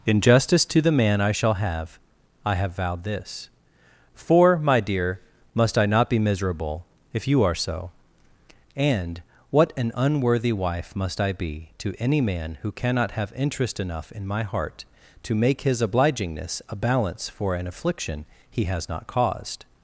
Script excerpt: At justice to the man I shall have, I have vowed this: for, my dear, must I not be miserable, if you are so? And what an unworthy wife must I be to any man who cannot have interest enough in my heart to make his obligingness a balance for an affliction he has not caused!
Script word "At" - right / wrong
wrong